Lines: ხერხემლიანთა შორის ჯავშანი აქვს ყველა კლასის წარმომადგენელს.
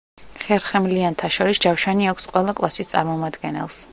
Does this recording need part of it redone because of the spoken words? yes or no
no